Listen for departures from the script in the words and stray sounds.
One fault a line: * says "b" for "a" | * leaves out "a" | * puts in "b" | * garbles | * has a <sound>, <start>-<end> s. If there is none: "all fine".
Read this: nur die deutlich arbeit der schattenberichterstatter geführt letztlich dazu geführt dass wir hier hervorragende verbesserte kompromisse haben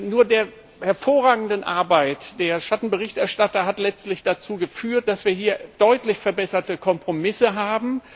* says "hervorragende" for "deutlich"
* says "hat" for "geführt"
* says "deutlich" for "hervorragende"